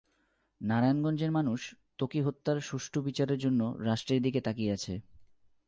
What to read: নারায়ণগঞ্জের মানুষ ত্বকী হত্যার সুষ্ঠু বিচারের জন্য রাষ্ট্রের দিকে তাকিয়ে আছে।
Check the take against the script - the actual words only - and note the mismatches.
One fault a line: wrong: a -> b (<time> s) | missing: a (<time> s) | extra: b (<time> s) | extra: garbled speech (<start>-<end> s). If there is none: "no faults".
no faults